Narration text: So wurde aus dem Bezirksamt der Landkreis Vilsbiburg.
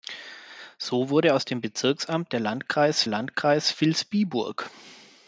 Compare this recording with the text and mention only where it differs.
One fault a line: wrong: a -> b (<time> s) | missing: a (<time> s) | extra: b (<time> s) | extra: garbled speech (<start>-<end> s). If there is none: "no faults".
extra: Landkreis (3.1 s)